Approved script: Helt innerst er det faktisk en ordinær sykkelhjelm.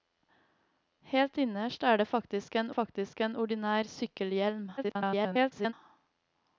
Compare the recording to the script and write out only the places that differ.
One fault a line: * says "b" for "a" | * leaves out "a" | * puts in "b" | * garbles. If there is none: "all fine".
* puts in "faktisk en"
* garbles